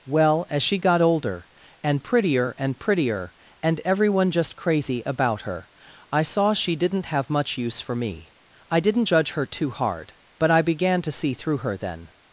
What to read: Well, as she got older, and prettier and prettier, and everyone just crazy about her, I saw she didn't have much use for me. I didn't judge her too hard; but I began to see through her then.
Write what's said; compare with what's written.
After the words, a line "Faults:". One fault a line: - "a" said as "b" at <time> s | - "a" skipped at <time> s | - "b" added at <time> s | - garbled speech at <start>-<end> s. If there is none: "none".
Well, as she got older, and prettier and prettier, and everyone just crazy about her, I saw she didn't have much use for me. I didn't judge her too hard; but I began to see through her then.
Faults:
none